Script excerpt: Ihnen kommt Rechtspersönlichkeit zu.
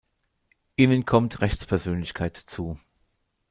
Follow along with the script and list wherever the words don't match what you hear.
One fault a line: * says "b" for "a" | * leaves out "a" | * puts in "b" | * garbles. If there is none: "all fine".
all fine